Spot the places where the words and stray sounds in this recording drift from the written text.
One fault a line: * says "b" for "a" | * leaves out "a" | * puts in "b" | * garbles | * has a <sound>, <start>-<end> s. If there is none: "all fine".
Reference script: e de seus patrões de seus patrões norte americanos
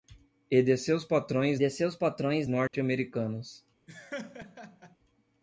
* has a dropout, 2.7-2.7 s
* has a laugh, 3.9-5.0 s